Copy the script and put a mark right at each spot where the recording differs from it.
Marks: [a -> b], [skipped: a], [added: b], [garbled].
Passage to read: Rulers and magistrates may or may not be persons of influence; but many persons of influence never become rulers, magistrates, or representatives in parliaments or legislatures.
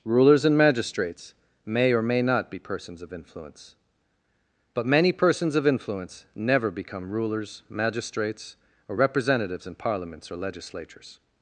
Rulers and magistrates may or may not be persons of influence; but many persons of influence never become rulers, magistrates, or representatives in parliaments or legislatures.